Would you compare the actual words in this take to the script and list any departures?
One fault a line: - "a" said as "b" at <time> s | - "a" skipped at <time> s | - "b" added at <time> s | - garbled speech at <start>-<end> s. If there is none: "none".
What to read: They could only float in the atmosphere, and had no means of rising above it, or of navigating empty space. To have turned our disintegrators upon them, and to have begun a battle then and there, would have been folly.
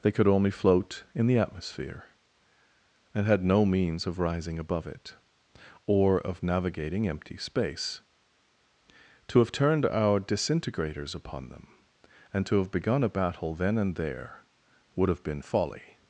none